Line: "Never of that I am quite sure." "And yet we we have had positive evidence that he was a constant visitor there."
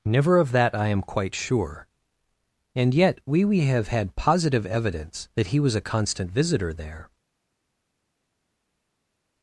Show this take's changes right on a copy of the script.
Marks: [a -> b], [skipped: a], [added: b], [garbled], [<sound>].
"Never of that I am quite sure." "And yet we we have had positive evidence that he was a constant visitor there."